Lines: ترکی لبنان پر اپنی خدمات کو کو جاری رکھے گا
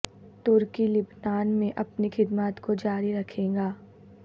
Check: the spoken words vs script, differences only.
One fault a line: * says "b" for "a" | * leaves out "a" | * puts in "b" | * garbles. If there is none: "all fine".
* says "میں" for "پر"
* leaves out "کو"